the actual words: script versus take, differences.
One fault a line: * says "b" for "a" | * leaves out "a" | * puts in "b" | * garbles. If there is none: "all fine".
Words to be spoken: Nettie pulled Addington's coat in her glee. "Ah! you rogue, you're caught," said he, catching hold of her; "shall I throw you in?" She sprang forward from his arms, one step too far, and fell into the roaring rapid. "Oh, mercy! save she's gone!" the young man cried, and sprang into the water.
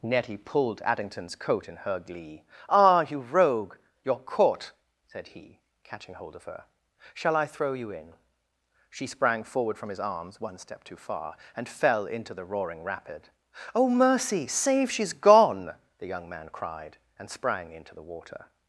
all fine